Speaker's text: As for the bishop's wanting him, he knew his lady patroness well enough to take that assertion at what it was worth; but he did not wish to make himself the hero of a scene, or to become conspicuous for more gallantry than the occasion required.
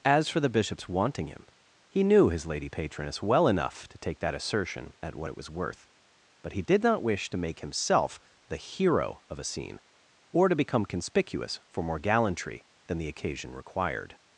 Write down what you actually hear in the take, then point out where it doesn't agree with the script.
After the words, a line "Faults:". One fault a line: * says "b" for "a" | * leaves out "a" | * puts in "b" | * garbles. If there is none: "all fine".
As for the bishop's wanting him, he knew his lady patroness well enough to take that assertion at what it was worth; but he did not wish to make himself the hero of a scene, or to become conspicuous for more gallantry than the occasion required.
Faults:
all fine